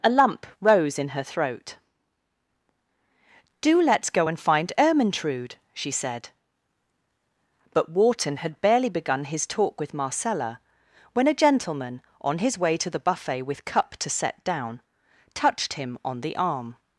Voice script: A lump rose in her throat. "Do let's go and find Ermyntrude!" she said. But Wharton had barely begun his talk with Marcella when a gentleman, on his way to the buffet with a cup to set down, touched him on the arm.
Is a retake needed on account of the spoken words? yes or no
yes